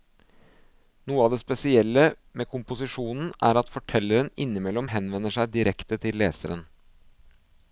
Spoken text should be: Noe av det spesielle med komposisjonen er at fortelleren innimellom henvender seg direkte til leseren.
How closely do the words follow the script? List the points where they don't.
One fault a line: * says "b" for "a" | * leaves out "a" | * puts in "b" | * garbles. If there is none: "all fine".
all fine